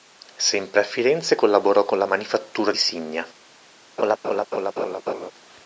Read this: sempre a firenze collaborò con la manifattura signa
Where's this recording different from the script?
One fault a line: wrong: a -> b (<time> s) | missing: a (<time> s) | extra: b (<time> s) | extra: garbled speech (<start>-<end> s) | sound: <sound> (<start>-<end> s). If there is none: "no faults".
sound: laugh (4.0-5.3 s)